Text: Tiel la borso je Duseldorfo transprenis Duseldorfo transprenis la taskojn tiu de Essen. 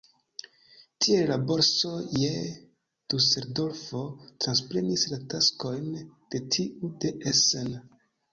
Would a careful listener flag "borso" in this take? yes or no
no